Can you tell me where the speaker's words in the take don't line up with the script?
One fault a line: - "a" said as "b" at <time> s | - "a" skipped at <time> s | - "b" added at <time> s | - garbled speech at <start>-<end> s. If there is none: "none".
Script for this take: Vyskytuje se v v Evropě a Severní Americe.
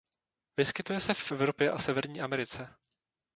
none